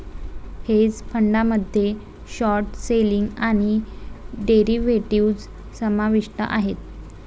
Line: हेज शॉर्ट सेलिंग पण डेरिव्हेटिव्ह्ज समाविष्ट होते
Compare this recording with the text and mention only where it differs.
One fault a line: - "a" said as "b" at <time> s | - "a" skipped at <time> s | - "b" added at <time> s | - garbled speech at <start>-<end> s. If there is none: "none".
- "फंडामध्ये" added at 1.1 s
- "पण" said as "आणि" at 3.4 s
- "होते" said as "आहेत" at 6.4 s